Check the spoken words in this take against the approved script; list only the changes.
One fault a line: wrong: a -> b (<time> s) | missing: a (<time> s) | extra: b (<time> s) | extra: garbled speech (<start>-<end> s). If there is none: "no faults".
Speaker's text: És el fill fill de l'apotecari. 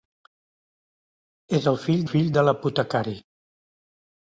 no faults